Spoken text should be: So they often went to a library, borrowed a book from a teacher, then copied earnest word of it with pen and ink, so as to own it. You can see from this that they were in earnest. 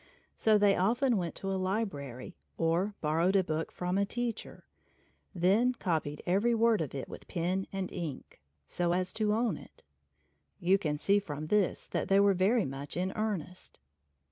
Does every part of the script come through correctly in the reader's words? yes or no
no